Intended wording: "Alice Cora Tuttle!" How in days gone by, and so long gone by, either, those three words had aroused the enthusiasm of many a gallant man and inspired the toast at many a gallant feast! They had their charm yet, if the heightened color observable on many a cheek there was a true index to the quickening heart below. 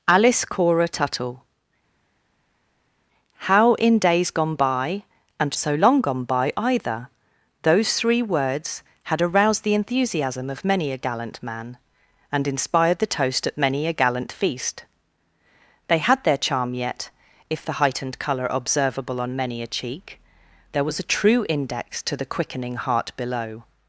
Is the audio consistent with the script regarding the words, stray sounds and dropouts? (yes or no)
yes